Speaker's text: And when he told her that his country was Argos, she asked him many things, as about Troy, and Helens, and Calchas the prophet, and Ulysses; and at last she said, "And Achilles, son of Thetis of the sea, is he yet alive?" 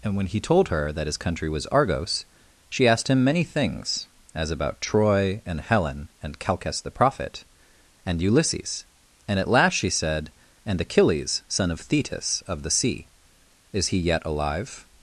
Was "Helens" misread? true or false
true